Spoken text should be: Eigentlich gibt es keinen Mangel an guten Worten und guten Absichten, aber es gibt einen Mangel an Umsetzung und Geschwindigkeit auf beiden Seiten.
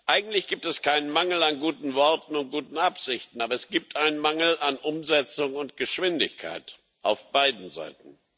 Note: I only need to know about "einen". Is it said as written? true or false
true